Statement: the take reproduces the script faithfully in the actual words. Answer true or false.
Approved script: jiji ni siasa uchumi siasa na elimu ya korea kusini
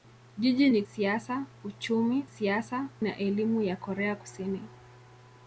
true